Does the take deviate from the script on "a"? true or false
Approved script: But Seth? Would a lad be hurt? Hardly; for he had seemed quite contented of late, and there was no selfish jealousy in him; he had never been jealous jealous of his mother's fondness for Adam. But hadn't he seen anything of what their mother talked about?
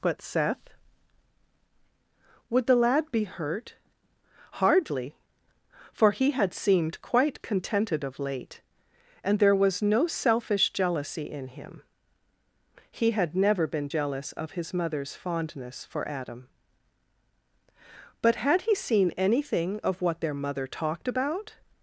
true